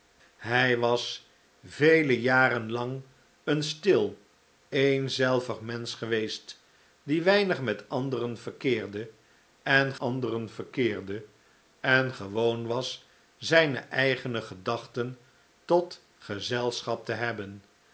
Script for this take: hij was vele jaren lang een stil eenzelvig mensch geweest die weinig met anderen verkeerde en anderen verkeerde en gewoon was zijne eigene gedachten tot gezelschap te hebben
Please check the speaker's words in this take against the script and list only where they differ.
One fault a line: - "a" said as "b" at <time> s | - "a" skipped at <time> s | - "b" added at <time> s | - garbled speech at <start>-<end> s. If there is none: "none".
none